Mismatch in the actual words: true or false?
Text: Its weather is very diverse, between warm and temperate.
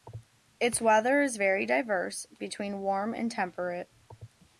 false